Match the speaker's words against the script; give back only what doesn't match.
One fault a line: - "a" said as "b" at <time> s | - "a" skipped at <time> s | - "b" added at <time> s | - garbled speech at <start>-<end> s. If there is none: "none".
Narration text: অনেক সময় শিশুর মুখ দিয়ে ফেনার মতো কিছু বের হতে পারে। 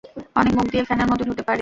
- "সময় শিশুর" skipped at 0.5 s
- "কিছু বের" skipped at 1.2 s